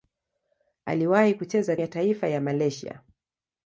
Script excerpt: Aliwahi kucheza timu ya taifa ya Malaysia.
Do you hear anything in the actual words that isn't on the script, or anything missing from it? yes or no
yes